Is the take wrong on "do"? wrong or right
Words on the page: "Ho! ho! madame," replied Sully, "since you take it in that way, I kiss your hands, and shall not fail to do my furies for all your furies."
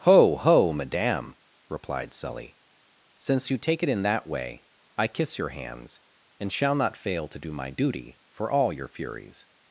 right